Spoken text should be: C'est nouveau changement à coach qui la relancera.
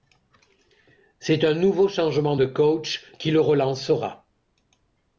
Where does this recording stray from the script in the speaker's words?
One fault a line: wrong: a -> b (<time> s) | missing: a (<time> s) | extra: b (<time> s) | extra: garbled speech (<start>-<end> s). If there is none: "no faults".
extra: un (1.4 s)
wrong: à -> de (2.3 s)
wrong: la -> le (3.3 s)